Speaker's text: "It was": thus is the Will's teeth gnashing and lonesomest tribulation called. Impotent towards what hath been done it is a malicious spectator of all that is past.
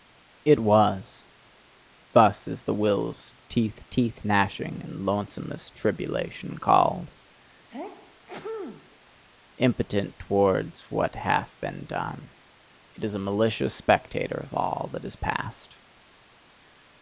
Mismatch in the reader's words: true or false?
true